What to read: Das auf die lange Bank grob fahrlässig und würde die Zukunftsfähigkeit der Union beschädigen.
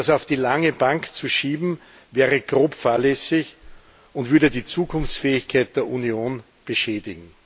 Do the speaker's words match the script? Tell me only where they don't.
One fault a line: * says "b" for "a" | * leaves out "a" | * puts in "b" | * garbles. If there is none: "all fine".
* puts in "zu schieben wäre"